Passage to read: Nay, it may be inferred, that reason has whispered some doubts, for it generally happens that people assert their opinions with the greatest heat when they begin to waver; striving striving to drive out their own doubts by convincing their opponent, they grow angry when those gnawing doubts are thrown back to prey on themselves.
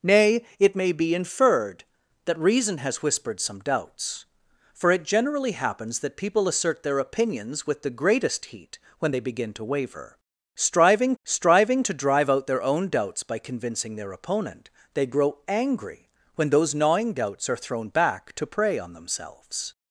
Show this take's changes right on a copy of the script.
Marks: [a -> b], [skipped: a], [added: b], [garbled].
Nay, it may be inferred, that reason has whispered some doubts, for it generally happens that people assert their opinions with the greatest heat when they begin to waver; striving striving to drive out their own doubts by convincing their opponent, they grow angry when those gnawing doubts are thrown back to prey on themselves.